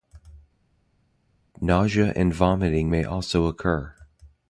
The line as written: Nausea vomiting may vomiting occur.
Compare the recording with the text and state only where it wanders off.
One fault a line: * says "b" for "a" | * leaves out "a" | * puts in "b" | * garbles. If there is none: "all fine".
* puts in "and"
* says "also" for "vomiting"